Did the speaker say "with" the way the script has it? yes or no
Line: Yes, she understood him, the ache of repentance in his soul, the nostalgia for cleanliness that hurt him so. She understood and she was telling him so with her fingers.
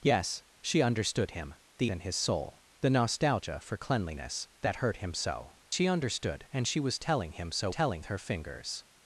no